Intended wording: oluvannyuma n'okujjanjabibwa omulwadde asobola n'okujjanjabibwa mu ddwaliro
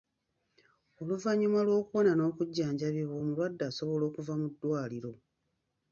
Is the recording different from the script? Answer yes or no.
yes